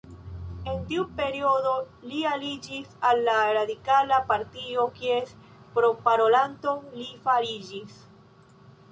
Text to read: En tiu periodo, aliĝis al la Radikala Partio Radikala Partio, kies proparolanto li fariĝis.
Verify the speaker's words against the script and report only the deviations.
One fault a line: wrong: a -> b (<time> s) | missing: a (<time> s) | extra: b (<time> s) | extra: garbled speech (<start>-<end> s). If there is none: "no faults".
extra: li (2.1 s)
missing: Radikala Partio (4.8 s)